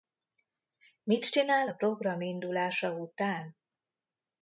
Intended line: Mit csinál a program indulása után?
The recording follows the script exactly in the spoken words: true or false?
true